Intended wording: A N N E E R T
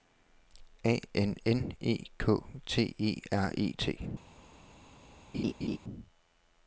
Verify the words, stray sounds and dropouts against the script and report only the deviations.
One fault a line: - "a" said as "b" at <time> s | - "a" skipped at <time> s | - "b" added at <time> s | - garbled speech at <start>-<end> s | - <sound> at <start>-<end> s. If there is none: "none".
- "K T" added at 2.2 s
- "E" added at 3.5 s
- laugh at 5.3-5.8 s